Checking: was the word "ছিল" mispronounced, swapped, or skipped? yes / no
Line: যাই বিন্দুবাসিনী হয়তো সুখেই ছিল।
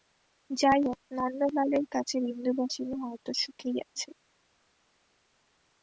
yes